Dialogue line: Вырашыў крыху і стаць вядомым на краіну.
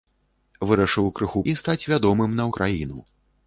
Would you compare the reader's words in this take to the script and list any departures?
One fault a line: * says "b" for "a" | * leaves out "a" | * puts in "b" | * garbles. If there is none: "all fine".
all fine